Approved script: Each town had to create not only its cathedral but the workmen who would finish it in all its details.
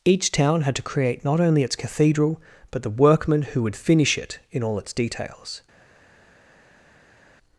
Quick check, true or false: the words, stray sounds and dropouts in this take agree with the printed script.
true